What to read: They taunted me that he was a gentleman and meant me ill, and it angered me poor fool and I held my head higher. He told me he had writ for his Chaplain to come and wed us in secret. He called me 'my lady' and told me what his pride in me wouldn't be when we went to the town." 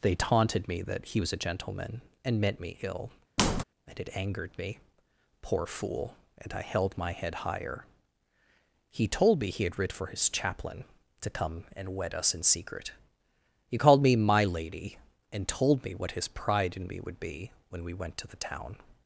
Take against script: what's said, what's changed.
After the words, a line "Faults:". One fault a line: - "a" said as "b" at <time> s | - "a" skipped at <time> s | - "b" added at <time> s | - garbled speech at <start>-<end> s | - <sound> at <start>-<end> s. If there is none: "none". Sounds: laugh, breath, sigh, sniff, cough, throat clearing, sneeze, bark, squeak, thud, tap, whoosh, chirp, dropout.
They taunted me that he was a gentleman and meant me ill, and it angered me poor fool and I held my head higher. He told me he had writ for his Chaplain to come and wed us in secret. He called me 'my lady' and told me what his pride in me would be when we went to the town."
Faults:
- squeak at 3.4-3.6 s
- "wouldn't" said as "would" at 17.0 s